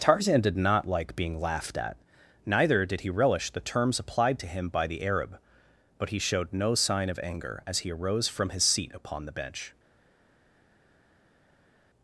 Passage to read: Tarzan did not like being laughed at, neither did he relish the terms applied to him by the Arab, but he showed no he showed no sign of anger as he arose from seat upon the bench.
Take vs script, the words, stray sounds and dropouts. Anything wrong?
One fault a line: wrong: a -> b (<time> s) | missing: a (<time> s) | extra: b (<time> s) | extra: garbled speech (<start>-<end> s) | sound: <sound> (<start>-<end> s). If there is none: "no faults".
missing: he showed no (6.7 s)
extra: his (8.5 s)